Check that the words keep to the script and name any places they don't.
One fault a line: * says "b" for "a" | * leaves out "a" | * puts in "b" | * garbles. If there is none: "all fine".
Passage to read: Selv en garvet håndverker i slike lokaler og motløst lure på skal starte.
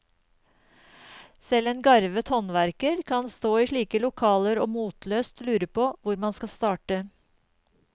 * puts in "kan stå"
* puts in "hvor man"